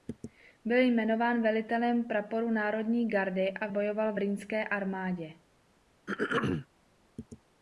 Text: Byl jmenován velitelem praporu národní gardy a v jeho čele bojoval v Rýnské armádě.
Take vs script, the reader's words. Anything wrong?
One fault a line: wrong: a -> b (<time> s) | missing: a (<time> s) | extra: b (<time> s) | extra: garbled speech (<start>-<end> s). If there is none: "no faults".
missing: jeho čele (3.7 s)